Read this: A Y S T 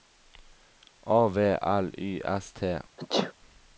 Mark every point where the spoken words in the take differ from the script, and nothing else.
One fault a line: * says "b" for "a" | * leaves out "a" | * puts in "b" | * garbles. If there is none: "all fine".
* puts in "V L"